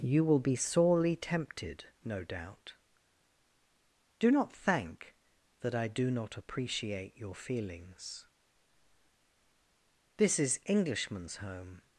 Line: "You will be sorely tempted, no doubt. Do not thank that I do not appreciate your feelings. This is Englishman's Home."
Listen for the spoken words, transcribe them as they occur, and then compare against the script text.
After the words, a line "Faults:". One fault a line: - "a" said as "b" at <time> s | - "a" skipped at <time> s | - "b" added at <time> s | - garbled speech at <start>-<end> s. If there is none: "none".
"You will be sorely tempted, no doubt. Do not thank that I do not appreciate your feelings. This is Englishman's Home."
Faults:
none